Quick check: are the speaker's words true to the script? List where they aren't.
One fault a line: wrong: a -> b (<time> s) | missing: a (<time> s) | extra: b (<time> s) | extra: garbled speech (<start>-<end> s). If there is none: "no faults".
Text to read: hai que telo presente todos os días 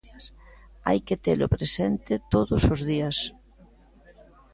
no faults